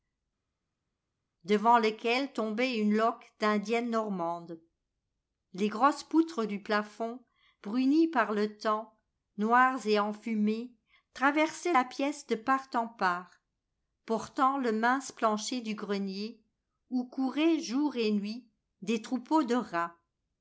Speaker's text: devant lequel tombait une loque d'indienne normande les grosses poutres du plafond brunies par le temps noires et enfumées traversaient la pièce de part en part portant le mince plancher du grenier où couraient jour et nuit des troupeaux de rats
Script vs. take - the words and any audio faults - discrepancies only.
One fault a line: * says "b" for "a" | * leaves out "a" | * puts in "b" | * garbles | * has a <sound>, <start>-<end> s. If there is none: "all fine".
all fine